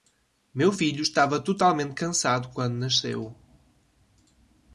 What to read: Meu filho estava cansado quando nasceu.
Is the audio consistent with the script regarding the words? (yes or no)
no